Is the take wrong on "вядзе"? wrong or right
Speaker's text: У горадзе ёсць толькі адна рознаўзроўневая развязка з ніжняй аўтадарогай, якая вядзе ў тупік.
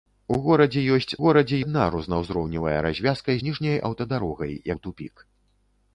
wrong